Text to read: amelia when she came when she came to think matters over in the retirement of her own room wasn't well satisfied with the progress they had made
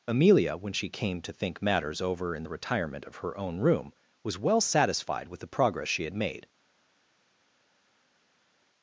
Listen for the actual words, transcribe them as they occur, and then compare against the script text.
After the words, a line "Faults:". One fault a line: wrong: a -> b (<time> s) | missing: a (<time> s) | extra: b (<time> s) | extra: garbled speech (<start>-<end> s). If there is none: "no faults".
amelia when she came to think matters over in the retirement of her own room was well satisfied with the progress she had made
Faults:
missing: when she came (1.2 s)
wrong: wasn't -> was (4.2 s)
wrong: they -> she (5.9 s)